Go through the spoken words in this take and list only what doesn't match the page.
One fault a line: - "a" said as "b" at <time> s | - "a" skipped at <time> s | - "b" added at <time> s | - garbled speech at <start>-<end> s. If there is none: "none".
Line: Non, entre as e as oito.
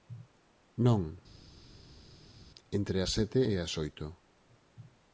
- "sete" added at 3.2 s